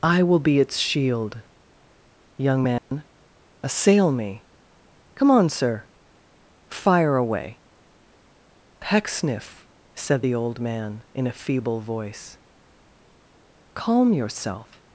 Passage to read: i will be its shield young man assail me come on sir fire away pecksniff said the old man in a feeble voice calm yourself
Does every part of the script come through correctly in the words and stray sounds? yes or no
no